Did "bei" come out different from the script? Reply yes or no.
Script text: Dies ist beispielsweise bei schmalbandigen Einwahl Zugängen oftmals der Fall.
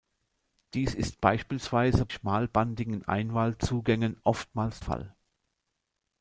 yes